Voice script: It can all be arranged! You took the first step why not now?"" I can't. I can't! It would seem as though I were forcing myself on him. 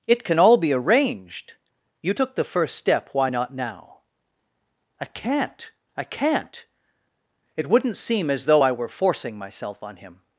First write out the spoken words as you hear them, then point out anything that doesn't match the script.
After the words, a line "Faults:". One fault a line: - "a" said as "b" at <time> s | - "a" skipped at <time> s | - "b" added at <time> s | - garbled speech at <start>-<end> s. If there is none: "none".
It can all be arranged! You took the first step why not now?"" I can't. I can't! It wouldn't seem as though I were forcing myself on him.
Faults:
- "would" said as "wouldn't" at 7.7 s